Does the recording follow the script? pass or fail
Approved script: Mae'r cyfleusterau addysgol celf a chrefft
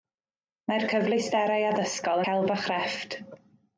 pass